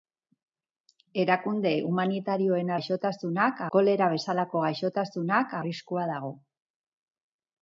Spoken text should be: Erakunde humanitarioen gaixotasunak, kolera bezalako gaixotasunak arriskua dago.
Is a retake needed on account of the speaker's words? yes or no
no